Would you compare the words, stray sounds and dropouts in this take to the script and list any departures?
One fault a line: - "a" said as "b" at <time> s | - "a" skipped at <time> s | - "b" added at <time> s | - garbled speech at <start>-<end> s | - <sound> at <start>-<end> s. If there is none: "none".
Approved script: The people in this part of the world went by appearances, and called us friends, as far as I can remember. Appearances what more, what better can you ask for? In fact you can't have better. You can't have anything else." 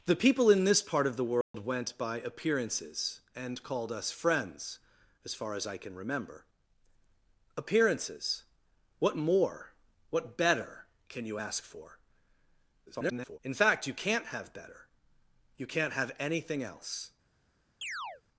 - dropout at 1.4-1.5 s
- garbled speech at 12.9-13.4 s
- chirp at 17.8-18.2 s